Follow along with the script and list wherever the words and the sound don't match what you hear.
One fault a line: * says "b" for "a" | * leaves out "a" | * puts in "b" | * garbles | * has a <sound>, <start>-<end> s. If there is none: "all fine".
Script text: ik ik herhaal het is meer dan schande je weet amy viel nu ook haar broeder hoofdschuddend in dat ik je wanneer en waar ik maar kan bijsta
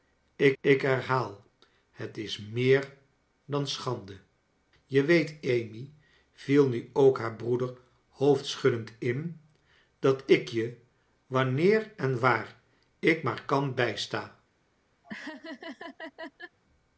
* has a laugh, 15.0-16.6 s